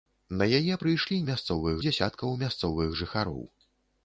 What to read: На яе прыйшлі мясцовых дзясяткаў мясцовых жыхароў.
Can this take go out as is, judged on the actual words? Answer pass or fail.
pass